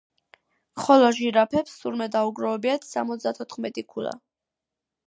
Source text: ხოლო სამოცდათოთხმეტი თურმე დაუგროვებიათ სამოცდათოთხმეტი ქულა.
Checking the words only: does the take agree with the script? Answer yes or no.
no